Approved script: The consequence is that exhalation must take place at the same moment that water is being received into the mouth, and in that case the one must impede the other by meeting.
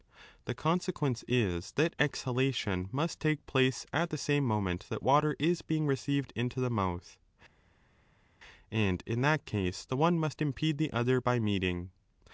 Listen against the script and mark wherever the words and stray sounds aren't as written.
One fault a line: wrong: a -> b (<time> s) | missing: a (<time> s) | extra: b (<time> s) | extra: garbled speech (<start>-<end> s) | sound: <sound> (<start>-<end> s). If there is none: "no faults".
no faults